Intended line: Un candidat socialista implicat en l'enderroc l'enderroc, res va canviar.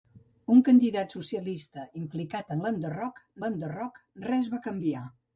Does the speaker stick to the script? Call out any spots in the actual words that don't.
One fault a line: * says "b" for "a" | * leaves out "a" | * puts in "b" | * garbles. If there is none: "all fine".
all fine